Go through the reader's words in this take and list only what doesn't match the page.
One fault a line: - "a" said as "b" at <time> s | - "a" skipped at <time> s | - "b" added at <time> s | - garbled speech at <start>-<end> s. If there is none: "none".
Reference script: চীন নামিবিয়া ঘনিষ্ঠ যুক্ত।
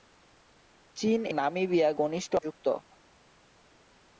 none